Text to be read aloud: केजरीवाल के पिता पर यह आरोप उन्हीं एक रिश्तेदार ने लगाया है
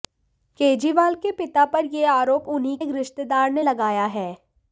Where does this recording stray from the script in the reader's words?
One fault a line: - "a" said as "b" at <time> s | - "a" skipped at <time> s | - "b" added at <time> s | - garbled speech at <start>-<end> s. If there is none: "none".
none